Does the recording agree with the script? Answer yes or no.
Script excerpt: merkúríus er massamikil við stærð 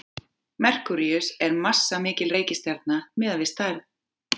no